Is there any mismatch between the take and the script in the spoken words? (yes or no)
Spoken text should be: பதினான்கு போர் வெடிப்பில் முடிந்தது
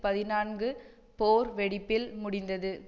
no